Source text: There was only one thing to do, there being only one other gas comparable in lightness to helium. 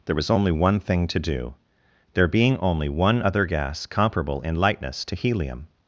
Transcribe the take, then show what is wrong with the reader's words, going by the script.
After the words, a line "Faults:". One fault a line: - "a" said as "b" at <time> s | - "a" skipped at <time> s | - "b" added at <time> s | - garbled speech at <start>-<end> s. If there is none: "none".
There was only one thing to do, there being only one other gas comparable in lightness to helium.
Faults:
none